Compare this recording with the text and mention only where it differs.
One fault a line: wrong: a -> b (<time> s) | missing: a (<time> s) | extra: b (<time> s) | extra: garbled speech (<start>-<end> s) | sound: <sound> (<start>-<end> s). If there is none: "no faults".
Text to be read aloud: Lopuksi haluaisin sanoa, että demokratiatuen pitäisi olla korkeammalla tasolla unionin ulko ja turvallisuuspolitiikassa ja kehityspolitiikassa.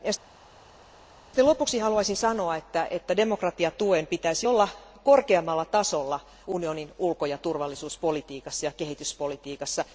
no faults